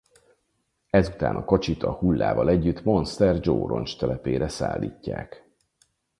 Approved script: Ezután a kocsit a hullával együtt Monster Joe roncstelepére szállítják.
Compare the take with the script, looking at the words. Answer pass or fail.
pass